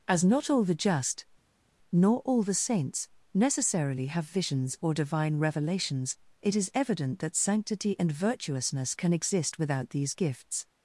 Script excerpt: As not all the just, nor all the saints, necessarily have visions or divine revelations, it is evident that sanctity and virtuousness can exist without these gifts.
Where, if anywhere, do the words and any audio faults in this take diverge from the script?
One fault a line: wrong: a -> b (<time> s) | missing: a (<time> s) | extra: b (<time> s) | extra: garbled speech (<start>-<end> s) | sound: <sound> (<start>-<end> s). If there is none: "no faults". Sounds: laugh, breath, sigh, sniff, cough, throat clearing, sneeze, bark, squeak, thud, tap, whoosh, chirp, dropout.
no faults